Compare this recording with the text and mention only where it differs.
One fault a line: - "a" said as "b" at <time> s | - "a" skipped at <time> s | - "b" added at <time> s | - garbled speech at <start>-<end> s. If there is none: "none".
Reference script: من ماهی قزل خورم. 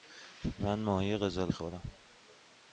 none